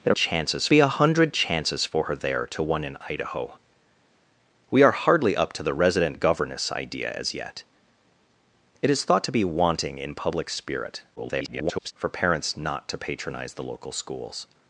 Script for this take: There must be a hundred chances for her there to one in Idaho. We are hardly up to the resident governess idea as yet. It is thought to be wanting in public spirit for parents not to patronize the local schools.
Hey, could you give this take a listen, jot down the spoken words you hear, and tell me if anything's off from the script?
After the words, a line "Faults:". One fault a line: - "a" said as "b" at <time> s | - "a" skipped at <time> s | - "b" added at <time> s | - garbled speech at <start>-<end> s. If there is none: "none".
There chances be a hundred chances for her there to one in Idaho. We are hardly up to the resident governess idea as yet. It is thought to be wanting in public spirit [garbled] for parents not to patronize the local schools.
Faults:
- "must" said as "chances" at 0.1 s
- garbled speech at 11.2-11.9 s